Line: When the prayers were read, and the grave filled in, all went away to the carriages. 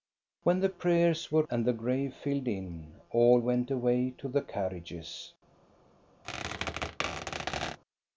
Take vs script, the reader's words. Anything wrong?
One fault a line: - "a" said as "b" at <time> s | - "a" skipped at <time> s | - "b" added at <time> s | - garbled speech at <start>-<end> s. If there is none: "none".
- "read" skipped at 1.4 s